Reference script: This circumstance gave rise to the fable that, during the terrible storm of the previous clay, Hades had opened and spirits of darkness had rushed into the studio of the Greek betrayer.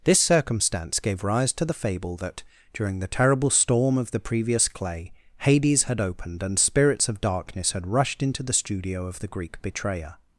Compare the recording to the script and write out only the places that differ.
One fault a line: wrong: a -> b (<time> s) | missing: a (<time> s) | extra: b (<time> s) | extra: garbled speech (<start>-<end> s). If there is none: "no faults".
no faults